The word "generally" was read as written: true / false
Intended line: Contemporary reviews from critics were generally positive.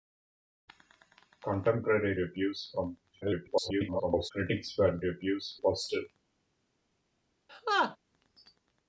false